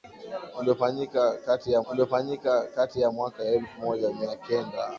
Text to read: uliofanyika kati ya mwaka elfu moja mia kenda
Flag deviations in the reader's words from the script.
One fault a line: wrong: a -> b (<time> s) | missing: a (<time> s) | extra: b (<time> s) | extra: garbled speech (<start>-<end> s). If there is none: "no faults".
extra: uliofanyika kati ya (1.9 s)